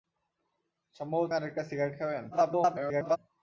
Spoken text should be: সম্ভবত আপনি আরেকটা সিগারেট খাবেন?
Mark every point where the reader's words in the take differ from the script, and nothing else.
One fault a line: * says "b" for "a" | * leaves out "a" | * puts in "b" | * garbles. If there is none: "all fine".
* leaves out "আপনি"
* garbles